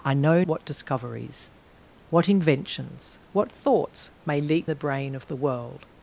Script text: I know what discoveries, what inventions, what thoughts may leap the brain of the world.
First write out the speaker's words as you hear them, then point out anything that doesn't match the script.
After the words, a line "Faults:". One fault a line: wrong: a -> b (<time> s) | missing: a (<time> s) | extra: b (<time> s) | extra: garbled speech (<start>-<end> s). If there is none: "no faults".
I know what discoveries, what inventions, what thoughts may leap the brain of the world.
Faults:
no faults